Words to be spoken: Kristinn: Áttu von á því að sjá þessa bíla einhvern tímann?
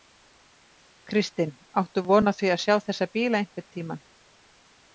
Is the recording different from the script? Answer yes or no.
no